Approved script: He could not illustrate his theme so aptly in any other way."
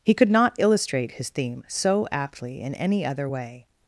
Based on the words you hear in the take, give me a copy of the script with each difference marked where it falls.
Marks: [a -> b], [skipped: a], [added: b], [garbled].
He could not illustrate his theme so aptly in any other way."